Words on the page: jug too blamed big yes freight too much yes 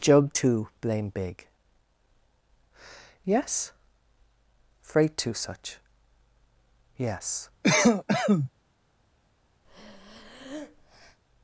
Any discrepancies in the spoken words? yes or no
yes